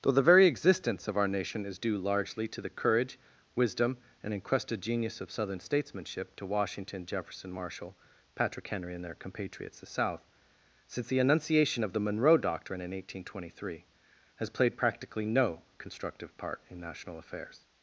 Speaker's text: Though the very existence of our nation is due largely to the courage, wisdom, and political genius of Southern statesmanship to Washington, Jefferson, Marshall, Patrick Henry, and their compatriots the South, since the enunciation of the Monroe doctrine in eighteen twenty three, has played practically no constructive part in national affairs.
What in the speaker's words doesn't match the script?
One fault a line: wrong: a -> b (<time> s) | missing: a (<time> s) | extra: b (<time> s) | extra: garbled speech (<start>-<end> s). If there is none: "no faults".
wrong: political -> encrusted (4.3 s)